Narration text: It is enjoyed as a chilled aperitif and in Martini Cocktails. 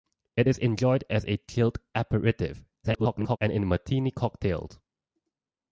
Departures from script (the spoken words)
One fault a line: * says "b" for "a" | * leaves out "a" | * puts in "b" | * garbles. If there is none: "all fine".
* garbles